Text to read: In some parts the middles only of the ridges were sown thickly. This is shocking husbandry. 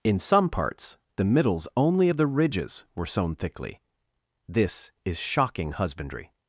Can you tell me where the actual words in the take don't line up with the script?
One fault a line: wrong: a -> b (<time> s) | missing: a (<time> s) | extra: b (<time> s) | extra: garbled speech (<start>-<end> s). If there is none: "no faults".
no faults